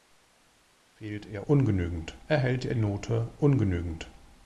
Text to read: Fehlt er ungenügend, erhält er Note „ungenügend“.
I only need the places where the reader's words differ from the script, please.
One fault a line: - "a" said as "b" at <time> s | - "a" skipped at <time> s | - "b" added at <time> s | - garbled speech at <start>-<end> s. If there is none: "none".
none